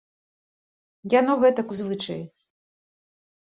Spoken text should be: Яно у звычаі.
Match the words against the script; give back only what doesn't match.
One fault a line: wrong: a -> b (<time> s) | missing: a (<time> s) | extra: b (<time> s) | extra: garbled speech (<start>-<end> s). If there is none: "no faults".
extra: гэтак (1.4 s)